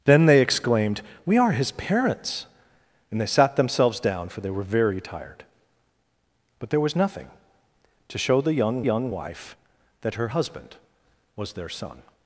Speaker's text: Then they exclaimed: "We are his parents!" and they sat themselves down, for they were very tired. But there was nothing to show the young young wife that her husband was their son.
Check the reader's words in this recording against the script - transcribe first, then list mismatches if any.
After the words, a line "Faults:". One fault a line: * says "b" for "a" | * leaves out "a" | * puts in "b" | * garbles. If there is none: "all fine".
Then they exclaimed: "We are his parents!" and they sat themselves down, for they were very tired. But there was nothing to show the young young wife that her husband was their son.
Faults:
all fine